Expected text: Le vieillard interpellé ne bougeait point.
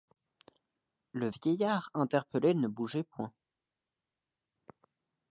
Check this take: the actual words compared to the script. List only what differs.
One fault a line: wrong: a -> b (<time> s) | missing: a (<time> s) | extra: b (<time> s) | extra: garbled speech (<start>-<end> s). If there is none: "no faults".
no faults